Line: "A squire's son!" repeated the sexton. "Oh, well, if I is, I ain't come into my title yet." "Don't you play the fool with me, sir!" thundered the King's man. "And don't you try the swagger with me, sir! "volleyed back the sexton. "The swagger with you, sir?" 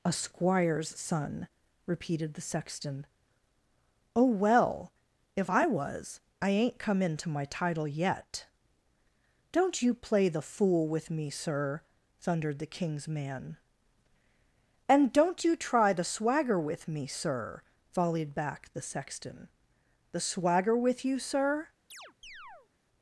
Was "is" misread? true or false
true